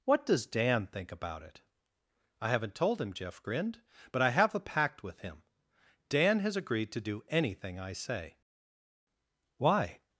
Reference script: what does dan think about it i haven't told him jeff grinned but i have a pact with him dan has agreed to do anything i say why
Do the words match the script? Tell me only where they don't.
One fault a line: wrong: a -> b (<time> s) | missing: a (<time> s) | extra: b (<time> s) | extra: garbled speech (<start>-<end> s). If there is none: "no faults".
no faults